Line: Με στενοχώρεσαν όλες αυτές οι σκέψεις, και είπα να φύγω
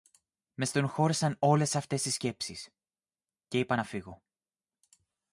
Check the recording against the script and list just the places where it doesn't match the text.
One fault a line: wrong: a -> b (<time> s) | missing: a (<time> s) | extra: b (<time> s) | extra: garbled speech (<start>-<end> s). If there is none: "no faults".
no faults